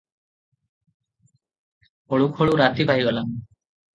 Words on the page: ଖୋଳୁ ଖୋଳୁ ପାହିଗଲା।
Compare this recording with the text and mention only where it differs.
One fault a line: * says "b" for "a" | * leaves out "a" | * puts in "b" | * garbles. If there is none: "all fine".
* puts in "ରାତି"